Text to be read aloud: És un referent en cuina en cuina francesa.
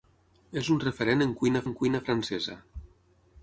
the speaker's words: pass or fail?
pass